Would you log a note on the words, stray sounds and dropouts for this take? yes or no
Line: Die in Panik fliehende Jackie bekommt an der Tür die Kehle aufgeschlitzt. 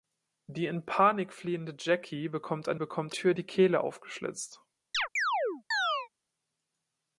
yes